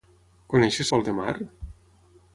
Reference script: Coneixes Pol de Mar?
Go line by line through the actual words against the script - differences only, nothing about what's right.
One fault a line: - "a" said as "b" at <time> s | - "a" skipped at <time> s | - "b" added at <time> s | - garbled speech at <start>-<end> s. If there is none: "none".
none